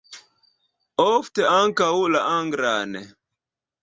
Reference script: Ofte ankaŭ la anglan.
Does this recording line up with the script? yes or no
yes